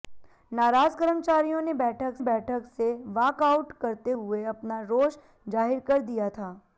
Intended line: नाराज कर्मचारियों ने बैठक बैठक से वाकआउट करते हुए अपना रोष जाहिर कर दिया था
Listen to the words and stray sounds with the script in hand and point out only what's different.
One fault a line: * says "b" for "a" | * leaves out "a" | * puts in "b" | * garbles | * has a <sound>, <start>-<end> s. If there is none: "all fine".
all fine